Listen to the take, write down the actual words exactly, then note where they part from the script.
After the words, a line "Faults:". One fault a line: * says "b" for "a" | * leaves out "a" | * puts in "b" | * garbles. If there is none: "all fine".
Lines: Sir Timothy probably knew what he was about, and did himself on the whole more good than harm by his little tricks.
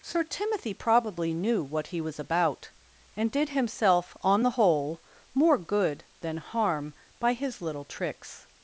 Sir Timothy probably knew what he was about, and did himself on the whole more good than harm by his little tricks.
Faults:
all fine